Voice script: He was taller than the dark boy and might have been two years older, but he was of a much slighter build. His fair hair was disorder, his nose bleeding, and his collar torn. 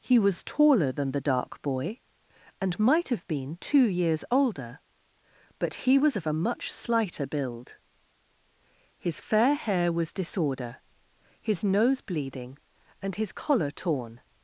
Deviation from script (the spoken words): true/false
false